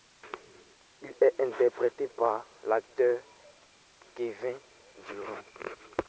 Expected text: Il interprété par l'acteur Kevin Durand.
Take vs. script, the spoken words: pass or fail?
fail